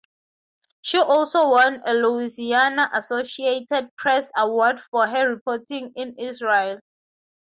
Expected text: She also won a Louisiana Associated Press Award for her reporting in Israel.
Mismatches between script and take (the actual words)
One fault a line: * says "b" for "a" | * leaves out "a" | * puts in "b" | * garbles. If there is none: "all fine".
all fine